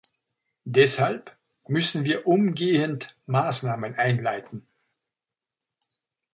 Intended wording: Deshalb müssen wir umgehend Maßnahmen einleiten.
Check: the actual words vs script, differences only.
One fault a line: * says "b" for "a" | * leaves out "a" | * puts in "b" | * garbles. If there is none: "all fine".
all fine